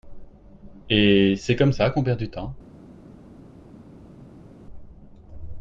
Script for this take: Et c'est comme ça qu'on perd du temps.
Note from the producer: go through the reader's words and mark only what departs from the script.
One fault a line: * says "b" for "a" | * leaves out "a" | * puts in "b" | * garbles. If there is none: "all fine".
all fine